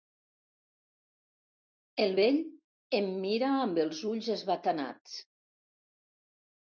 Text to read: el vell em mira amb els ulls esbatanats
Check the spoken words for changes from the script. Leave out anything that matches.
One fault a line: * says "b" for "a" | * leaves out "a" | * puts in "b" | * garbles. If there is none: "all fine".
all fine